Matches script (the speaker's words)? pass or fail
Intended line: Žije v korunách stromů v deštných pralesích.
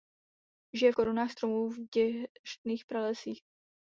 pass